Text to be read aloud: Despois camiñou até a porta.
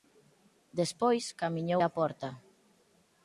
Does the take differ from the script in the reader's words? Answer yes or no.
yes